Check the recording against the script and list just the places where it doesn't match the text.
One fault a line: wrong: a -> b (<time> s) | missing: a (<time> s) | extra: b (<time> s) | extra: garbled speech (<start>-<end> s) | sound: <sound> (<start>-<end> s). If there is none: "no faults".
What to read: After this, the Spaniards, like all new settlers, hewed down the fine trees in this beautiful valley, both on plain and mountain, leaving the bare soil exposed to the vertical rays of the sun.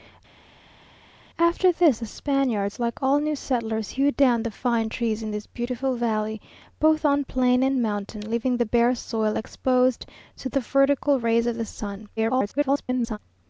extra: garbled speech (12.2-13.2 s)